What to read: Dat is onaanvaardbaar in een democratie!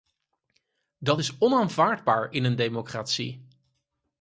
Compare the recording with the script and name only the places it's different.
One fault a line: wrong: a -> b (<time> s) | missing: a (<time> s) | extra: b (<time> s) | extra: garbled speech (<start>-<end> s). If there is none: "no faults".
no faults